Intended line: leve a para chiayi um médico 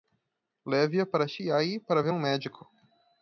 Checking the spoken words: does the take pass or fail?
fail